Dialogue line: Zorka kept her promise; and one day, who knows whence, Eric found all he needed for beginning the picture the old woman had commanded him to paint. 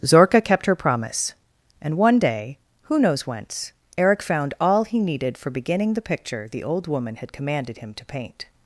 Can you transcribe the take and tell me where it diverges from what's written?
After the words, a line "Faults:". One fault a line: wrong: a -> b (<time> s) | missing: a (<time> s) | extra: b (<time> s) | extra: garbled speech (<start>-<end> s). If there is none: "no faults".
Zorka kept her promise; and one day, who knows whence, Eric found all he needed for beginning the picture the old woman had commanded him to paint.
Faults:
no faults